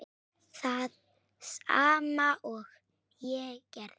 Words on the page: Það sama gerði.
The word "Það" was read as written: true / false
true